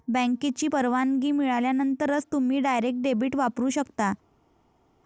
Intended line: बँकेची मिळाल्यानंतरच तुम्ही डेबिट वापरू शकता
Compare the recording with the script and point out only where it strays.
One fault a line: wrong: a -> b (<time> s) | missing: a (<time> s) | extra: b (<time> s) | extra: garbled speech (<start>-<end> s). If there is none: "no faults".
extra: परवानगी (0.6 s)
extra: डायरेक्ट (2.6 s)